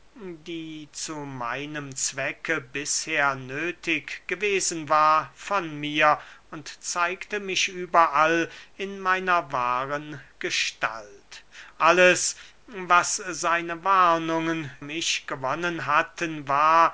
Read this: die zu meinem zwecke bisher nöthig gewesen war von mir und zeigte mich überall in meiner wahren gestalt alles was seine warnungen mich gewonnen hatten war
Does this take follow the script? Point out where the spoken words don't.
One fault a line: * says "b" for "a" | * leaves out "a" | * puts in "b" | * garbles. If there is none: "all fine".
all fine